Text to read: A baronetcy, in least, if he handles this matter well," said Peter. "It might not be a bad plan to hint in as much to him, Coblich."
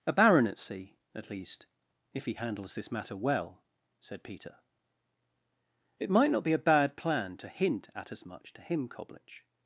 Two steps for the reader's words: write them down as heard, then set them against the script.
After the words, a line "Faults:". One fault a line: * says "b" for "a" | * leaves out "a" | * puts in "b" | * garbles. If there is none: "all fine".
A baronetcy, at least, if he handles this matter well," said Peter. "It might not be a bad plan to hint at as much to him, Coblich."
Faults:
* says "at" for "in"
* says "at" for "in"